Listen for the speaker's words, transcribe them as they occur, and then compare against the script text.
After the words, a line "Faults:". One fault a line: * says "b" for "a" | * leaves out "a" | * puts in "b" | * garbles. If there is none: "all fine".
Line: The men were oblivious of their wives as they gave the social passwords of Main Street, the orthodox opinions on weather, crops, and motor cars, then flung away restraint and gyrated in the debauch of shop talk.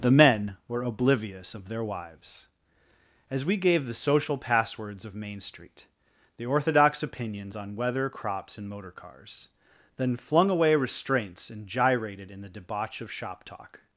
The men were oblivious of their wives as we gave the social passwords of Main Street, the orthodox opinions on weather, crops, and motor cars, then flung away restraints and gyrated in the debauch of shop talk.
Faults:
* says "we" for "they"
* says "restraints" for "restraint"